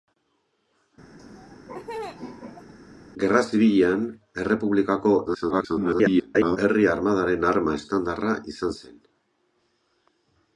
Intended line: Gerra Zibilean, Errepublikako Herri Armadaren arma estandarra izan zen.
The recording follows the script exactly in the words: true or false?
false